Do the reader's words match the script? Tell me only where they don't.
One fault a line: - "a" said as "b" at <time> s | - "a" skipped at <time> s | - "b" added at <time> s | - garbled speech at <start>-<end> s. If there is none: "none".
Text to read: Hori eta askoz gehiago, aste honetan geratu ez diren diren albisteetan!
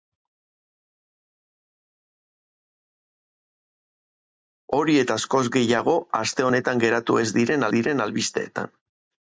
none